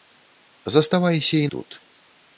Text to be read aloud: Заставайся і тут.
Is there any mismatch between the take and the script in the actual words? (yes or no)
no